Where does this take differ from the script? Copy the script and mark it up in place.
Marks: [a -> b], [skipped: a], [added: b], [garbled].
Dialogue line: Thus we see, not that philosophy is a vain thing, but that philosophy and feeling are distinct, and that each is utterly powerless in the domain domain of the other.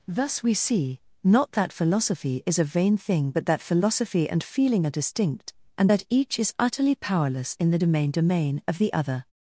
Thus we see, not that philosophy is a vain thing, but that philosophy and feeling are distinct, and that each is utterly powerless in the domain domain of the other.